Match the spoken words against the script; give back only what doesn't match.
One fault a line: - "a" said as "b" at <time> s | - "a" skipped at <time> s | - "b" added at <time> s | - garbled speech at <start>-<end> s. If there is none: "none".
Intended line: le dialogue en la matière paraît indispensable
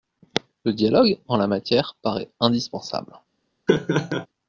none